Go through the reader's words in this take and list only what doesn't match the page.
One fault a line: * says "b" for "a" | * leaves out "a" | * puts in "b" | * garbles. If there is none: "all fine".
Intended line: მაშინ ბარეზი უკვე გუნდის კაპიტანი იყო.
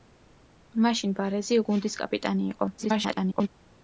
* leaves out "უკვე"
* garbles